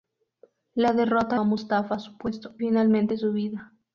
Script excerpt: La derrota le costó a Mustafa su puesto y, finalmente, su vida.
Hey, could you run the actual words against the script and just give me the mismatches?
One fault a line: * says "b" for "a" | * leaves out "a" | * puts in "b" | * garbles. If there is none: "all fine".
* leaves out "le costó"
* leaves out "y"